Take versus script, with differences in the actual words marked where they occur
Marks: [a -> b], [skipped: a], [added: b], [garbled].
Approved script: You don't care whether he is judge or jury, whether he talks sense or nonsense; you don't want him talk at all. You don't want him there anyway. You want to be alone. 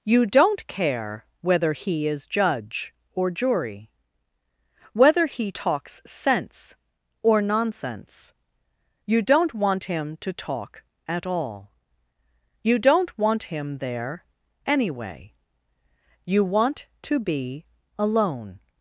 You don't care whether he is judge or jury, whether he talks sense or nonsense; you don't want him [added: to] talk at all. You don't want him there anyway. You want to be alone.